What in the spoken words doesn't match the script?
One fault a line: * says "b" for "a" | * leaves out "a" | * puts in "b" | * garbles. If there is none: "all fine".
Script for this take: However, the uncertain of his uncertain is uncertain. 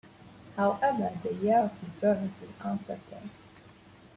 * says "year" for "uncertain"
* says "birth" for "uncertain"